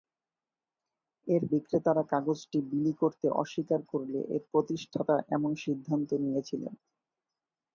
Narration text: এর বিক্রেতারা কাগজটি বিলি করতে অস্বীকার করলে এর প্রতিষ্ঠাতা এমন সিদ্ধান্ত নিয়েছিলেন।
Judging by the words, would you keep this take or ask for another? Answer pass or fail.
pass